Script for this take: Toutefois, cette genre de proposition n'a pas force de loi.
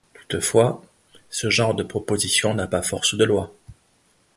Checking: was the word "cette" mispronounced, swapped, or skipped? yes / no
yes